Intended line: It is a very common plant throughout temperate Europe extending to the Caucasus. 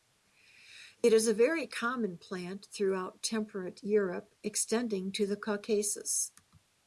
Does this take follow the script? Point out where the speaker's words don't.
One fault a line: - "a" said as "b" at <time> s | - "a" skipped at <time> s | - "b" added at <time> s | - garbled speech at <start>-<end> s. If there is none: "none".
none